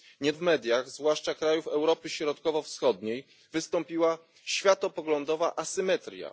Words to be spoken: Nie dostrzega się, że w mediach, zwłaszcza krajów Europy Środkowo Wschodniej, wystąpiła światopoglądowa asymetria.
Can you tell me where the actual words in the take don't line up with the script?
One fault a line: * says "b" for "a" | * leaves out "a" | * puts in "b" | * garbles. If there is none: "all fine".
* leaves out "dostrzega się że"